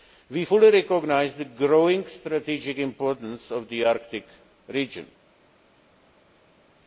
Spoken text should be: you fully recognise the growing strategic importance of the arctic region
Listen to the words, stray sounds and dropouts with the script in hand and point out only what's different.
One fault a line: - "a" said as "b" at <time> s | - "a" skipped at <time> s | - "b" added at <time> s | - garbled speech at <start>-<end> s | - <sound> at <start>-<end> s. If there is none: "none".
- "you" said as "we" at 0.3 s